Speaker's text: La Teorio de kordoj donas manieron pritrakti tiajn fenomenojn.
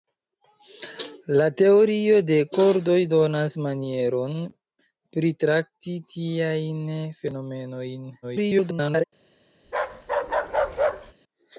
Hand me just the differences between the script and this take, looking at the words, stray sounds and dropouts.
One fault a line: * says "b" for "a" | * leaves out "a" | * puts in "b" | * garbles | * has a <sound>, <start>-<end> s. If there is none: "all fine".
* garbles
* has a bark, 9.6-11.1 s